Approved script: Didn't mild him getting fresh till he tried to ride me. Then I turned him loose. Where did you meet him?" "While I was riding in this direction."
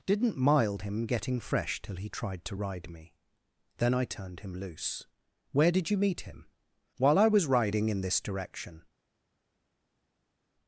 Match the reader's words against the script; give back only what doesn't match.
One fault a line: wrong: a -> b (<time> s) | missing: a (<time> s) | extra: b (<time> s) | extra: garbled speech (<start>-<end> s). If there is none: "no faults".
no faults